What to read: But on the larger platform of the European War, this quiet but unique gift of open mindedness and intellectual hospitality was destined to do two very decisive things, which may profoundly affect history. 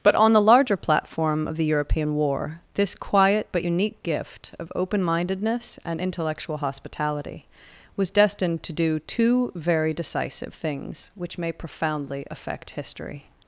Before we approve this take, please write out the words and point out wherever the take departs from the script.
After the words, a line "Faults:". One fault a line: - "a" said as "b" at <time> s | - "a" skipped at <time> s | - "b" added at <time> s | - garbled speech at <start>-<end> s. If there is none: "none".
But on the larger platform of the European War, this quiet but unique gift of open mindedness and intellectual hospitality was destined to do two very decisive things, which may profoundly affect history.
Faults:
none